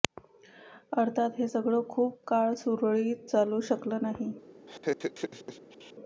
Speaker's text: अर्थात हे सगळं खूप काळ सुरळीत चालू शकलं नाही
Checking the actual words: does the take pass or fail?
pass